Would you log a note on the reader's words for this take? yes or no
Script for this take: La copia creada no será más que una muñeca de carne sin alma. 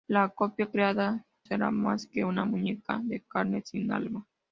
yes